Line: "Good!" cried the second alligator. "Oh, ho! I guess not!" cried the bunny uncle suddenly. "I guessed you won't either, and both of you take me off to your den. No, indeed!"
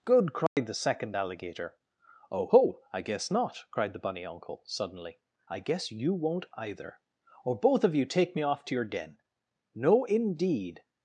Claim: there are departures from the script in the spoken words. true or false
true